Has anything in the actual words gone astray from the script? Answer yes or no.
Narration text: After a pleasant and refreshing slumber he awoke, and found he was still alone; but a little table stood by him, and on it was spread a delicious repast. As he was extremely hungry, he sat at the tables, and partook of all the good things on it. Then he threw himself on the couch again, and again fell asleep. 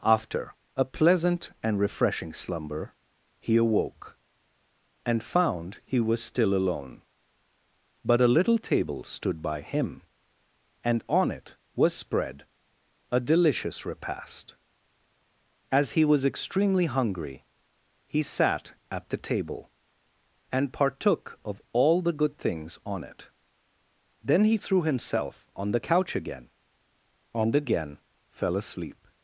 yes